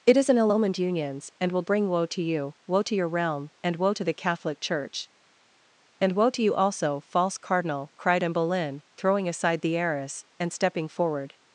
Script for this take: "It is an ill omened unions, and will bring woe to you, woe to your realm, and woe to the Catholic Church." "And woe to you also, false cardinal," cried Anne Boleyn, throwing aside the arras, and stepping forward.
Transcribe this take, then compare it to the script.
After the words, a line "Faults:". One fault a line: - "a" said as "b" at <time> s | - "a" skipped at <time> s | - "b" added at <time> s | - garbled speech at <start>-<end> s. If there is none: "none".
"It is an ill omened unions, and will bring woe to you, woe to your realm, and woe to the Catholic Church." "And woe to you also, false cardinal," cried Anne Boleyn, throwing aside the arras, and stepping forward.
Faults:
none